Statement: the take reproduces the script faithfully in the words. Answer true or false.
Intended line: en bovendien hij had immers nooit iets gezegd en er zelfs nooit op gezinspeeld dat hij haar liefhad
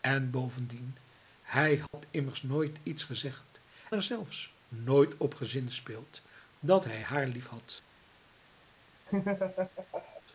false